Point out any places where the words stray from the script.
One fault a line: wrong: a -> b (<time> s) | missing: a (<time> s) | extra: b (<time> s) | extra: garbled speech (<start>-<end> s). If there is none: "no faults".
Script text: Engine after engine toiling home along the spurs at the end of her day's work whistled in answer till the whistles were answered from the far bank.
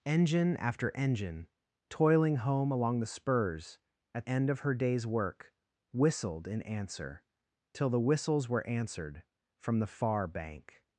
missing: the (4.2 s)